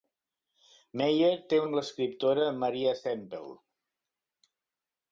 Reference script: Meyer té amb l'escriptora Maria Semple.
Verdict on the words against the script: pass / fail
pass